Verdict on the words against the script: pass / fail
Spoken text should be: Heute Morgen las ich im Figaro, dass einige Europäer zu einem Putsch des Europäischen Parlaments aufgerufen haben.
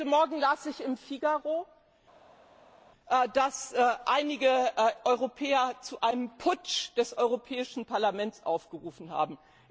pass